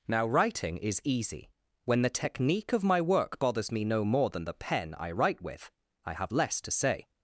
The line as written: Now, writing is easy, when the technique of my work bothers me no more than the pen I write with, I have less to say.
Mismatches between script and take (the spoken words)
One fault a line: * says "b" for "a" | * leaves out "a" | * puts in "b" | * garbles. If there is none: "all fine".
all fine